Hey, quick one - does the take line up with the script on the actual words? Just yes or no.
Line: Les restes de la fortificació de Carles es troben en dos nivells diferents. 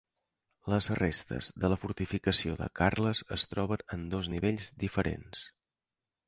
yes